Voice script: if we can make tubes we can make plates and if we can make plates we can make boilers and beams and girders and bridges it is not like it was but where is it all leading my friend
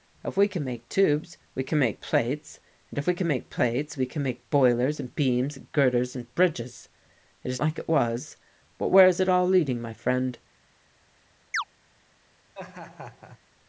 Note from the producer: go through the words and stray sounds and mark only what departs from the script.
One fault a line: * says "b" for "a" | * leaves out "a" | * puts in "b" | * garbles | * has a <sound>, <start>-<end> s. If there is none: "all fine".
* leaves out "not"
* has a chirp, 11.5-11.6 s
* has a laugh, 12.5-13.4 s